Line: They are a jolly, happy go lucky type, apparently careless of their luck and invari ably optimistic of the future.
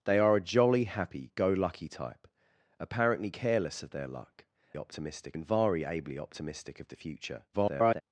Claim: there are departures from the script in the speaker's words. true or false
true